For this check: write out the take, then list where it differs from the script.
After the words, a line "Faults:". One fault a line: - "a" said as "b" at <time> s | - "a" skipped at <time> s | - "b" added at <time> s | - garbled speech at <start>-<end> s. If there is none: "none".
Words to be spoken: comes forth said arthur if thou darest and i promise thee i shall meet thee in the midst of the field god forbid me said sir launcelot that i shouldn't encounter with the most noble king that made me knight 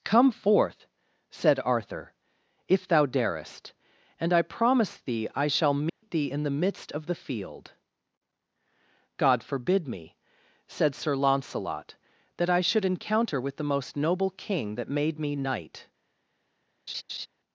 come forth said arthur if thou darest and i promise thee i shall meet thee in the midst of the field god forbid me said sir launcelot that i should encounter with the most noble king that made me knight
Faults:
- "comes" said as "come" at 0.0 s
- "shouldn't" said as "should" at 12.6 s